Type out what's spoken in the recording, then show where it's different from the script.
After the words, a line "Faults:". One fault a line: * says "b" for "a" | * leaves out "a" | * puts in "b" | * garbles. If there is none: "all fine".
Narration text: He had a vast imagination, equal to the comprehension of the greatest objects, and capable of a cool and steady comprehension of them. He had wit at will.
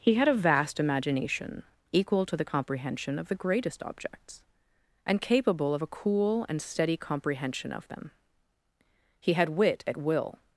He had a vast imagination, equal to the comprehension of the greatest objects, and capable of a cool and steady comprehension of them. He had wit at will.
Faults:
all fine